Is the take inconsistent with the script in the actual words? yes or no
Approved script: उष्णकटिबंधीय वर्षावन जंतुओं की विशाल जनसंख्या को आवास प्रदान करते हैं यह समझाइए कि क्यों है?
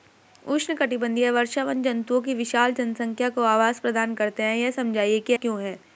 no